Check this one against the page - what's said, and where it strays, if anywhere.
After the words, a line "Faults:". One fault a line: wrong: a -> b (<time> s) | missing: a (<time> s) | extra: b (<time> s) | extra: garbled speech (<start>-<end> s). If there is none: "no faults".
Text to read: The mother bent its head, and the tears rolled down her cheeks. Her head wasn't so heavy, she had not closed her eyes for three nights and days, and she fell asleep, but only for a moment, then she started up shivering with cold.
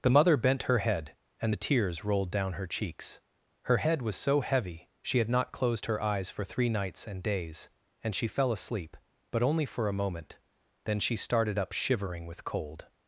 The mother bent her head, and the tears rolled down her cheeks. Her head was so heavy, she had not closed her eyes for three nights and days, and she fell asleep, but only for a moment, then she started up shivering with cold.
Faults:
wrong: its -> her (0.6 s)
wrong: wasn't -> was (4.0 s)